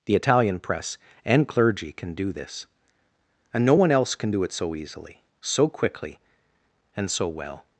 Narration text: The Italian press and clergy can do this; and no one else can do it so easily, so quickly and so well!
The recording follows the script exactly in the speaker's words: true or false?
true